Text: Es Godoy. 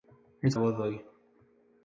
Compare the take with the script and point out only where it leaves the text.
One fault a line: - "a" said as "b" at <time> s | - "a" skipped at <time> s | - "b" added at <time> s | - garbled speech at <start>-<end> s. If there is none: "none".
none